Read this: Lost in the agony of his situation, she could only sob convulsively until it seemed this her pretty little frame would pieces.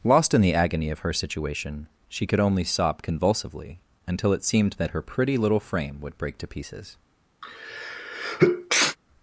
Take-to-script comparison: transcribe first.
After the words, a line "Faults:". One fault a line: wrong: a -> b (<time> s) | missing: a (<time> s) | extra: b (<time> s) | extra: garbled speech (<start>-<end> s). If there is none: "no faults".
Lost in the agony of her situation, she could only sob convulsively until it seemed that her pretty little frame would break to pieces.
Faults:
wrong: his -> her (1.0 s)
wrong: this -> that (4.7 s)
extra: break to (6.2 s)